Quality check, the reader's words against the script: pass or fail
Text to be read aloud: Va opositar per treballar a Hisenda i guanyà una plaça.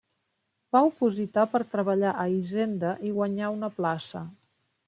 pass